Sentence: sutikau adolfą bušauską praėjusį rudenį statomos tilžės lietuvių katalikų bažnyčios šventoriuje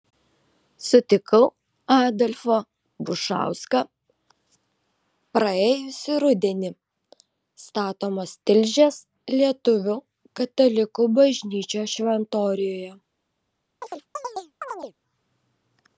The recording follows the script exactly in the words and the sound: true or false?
false